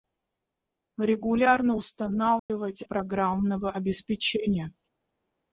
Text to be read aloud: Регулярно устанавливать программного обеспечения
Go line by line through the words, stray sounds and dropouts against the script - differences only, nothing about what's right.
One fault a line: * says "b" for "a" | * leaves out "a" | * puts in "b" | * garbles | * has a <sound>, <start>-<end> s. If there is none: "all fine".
* has a dropout, 2.4-2.5 s